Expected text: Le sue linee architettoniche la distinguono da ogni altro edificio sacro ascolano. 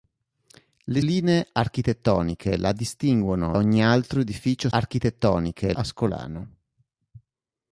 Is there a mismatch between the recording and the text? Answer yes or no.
yes